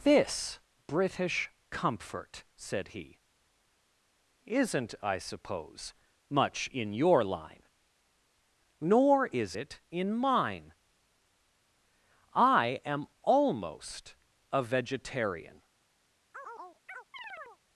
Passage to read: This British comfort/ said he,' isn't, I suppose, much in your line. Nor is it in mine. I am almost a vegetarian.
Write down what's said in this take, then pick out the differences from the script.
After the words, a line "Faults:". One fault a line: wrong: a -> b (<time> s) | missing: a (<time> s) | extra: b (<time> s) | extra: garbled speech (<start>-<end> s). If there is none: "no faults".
This British comfort/ said he,' isn't, I suppose, much in your line. Nor is it in mine. I am almost a vegetarian.
Faults:
no faults